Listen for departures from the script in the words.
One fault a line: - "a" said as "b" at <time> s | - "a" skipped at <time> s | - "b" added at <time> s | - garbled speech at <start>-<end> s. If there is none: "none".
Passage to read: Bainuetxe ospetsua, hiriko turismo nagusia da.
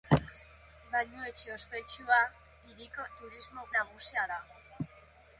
none